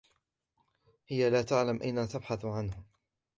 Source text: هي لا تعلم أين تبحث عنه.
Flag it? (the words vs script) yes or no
no